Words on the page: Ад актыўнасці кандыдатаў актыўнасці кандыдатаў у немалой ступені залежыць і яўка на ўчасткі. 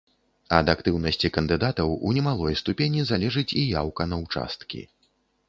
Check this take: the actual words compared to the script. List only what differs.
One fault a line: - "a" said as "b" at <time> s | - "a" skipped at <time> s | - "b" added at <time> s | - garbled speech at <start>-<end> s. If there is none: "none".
- "актыўнасці кандыдатаў" skipped at 1.9 s